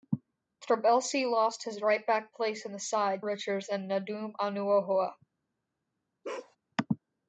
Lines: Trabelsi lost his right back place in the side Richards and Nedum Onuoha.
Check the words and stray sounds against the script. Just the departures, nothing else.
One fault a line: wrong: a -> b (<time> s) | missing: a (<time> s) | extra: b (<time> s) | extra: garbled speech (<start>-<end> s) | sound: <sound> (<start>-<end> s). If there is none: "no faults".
sound: bark (6.2-6.6 s)